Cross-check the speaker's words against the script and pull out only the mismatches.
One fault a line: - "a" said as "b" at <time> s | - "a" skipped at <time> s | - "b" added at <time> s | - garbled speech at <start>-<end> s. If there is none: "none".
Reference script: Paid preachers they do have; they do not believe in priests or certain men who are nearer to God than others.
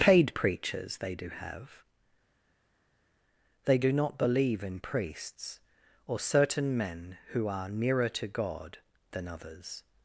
none